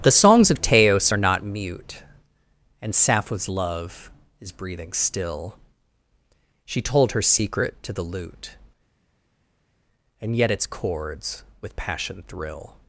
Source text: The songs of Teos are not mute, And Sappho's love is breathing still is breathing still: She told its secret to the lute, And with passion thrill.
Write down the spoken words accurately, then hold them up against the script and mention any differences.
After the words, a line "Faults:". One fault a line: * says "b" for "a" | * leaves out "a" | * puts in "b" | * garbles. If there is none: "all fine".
The songs of Teos are not mute, And Sappho's love is breathing still: She told her secret to the lute, And yet its chords with passion thrill.
Faults:
* leaves out "is breathing still"
* says "her" for "its"
* puts in "yet its chords"